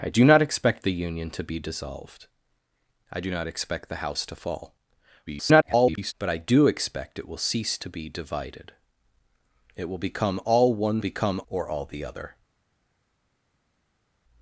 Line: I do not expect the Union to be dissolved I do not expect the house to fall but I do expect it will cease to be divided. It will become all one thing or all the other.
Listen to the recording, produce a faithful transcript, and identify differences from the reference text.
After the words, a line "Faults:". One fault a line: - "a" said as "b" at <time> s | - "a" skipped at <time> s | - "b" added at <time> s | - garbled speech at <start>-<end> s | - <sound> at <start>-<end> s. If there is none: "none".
I do not expect the Union to be dissolved I do not expect the house to fall [garbled] but I do expect it will cease to be divided. It will become all one become or all the other.
Faults:
- garbled speech at 5.3-6.1 s
- "thing" said as "become" at 11.0 s